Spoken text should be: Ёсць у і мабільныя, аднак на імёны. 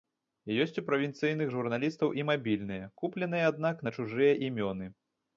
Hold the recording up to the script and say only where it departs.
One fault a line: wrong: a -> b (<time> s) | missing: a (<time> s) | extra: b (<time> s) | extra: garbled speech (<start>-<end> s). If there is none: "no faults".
extra: правінцыйных журналістаў (0.9 s)
extra: купленыя (3.0 s)
extra: чужыя (3.9 s)